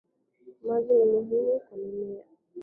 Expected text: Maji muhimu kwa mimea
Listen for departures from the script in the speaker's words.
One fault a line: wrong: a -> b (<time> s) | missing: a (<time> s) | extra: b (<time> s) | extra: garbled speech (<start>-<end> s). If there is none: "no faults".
extra: ni (0.9 s)